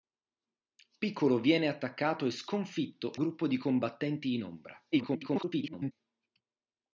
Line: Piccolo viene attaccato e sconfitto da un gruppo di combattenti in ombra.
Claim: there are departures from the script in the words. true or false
true